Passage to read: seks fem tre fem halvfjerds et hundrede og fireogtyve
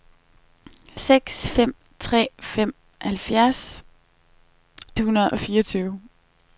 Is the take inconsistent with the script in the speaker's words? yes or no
yes